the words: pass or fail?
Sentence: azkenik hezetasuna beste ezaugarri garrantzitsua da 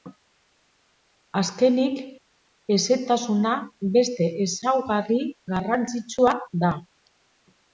pass